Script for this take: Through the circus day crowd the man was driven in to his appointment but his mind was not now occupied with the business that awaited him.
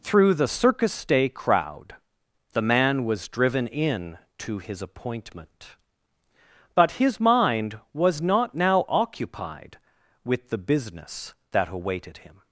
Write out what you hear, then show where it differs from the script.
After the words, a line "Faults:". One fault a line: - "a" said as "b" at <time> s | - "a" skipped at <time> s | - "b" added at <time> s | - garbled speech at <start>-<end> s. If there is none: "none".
Through the circus day crowd the man was driven in to his appointment but his mind was not now occupied with the business that awaited him.
Faults:
none